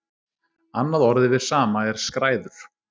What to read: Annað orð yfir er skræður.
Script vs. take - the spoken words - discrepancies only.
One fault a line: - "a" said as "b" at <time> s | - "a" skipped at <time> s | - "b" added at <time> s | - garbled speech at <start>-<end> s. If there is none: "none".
- "sama" added at 1.5 s